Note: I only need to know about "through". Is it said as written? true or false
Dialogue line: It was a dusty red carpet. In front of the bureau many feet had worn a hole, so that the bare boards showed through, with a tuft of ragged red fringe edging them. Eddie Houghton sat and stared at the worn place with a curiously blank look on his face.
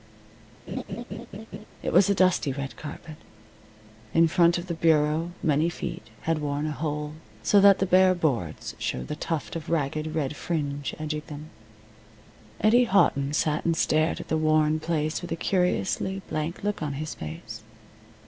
false